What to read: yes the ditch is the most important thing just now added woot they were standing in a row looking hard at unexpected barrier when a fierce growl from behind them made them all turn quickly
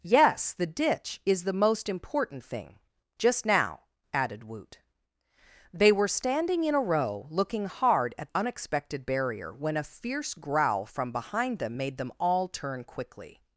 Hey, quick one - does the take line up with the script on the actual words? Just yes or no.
yes